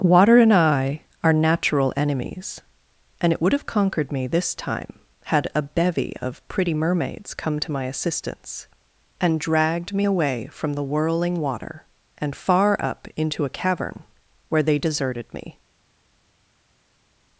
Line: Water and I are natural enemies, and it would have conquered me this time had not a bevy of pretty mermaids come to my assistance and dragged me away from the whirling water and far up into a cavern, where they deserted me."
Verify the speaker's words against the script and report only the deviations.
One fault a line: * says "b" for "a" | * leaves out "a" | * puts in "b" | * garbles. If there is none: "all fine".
* leaves out "not"